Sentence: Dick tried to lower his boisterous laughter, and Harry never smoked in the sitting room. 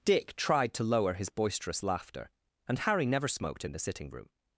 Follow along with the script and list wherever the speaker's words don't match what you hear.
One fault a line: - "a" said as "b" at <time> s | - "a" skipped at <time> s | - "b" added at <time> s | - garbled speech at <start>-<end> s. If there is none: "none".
none